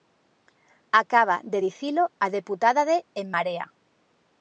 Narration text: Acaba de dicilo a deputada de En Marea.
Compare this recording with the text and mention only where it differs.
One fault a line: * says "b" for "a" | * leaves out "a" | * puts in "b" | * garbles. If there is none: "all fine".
all fine